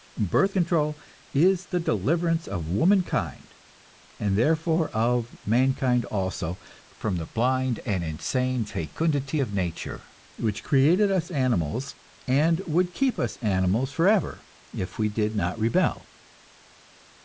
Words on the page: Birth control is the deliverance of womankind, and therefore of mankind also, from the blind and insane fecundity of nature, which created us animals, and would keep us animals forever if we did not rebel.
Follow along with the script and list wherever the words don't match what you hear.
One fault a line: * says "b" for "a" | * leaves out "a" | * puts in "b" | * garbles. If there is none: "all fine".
all fine